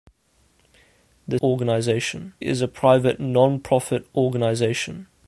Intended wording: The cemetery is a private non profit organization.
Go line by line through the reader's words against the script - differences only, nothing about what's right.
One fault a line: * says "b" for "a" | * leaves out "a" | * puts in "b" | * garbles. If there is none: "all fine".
* says "organization" for "cemetery"